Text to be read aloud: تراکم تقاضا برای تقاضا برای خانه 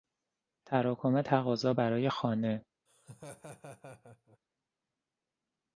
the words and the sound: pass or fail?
fail